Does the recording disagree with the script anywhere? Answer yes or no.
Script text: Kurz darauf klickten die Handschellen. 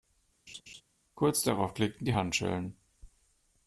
no